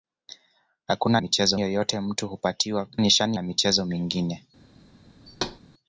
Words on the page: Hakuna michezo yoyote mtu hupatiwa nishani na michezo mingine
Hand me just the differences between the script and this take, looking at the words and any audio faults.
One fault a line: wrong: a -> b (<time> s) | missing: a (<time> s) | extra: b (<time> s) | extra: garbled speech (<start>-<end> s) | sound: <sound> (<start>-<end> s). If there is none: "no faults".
sound: thud (5.3-5.6 s)